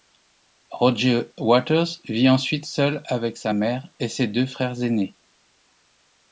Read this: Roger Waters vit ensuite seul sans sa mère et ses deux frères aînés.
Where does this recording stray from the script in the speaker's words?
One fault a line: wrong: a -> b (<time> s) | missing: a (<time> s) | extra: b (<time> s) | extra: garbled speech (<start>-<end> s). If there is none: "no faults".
wrong: sans -> avec (3.0 s)